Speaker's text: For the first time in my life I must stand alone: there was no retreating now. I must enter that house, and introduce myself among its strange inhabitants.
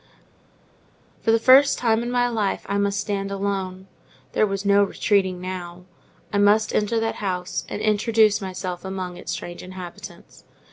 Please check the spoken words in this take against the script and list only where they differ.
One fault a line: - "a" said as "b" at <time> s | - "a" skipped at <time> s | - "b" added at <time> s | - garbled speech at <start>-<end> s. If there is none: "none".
none